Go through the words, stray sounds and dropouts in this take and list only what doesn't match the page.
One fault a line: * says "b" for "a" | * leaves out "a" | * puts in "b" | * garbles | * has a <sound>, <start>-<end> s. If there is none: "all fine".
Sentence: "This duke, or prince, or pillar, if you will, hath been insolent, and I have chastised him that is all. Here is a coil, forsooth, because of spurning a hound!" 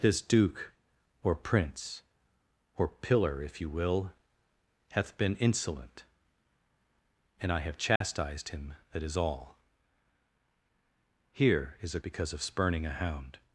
* has a dropout, 8.0-8.0 s
* leaves out "coil forsooth"